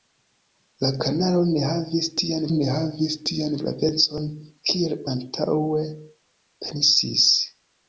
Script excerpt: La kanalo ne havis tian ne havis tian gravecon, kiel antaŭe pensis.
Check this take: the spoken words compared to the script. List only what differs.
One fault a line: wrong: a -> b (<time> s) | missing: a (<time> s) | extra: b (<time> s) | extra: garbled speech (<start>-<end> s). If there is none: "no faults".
no faults